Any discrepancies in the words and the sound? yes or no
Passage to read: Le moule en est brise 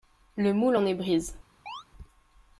yes